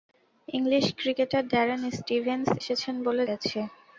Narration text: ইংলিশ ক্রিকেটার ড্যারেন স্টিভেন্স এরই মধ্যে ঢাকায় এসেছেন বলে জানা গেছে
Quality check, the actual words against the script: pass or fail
fail